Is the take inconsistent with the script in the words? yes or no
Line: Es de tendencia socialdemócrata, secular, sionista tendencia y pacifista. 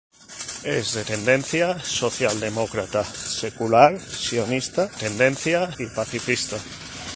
no